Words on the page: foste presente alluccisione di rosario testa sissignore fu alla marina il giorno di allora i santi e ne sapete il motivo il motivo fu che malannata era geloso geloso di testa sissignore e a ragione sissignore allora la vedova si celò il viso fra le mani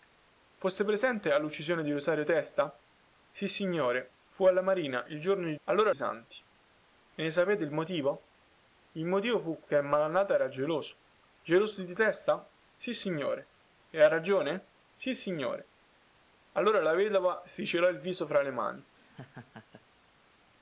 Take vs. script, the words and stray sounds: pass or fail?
fail